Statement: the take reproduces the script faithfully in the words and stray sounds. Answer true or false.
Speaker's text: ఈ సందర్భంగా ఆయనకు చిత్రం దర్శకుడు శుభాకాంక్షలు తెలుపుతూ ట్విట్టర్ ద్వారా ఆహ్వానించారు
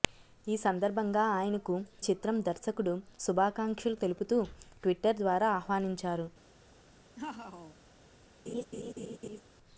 false